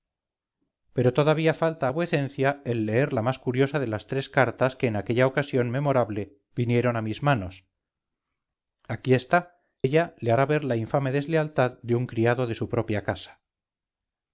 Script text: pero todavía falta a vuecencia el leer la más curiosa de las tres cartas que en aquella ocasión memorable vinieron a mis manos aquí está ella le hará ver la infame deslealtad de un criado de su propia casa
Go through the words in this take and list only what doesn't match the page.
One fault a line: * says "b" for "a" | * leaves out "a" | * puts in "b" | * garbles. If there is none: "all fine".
all fine